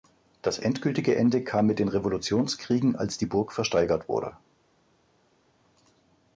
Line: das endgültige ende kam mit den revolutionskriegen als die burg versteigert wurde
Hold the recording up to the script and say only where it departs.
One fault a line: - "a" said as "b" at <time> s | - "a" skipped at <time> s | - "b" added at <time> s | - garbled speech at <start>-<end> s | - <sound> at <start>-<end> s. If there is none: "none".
none